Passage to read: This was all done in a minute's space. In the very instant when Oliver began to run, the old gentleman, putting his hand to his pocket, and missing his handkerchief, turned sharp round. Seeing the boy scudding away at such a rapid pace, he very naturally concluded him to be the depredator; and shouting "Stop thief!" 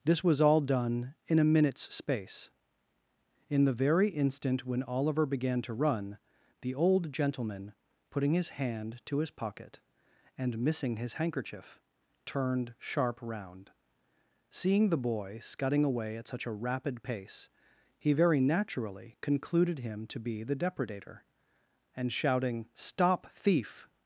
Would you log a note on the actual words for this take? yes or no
no